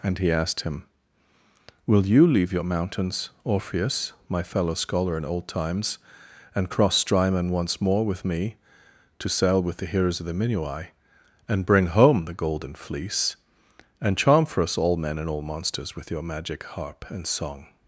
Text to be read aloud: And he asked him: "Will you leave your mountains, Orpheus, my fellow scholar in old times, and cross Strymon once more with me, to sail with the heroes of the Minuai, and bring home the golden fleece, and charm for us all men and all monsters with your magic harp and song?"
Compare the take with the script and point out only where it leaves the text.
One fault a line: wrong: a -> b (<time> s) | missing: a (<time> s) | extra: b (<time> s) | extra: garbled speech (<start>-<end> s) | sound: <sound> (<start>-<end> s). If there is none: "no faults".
no faults